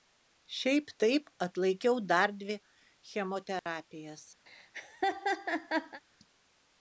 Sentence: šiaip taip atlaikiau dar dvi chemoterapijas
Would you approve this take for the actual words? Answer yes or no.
yes